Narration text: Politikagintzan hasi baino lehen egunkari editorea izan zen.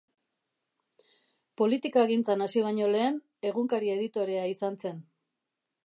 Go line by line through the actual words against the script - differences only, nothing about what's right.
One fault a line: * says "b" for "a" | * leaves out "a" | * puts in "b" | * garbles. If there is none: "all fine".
all fine